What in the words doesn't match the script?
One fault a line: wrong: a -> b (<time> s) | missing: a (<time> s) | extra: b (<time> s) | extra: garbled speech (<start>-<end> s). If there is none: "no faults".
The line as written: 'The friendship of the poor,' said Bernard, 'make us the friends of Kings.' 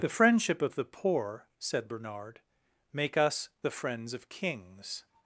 no faults